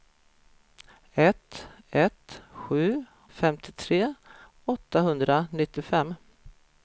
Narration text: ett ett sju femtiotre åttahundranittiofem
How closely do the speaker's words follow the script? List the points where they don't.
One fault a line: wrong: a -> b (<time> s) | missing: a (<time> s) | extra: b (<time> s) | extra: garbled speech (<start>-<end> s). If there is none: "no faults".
no faults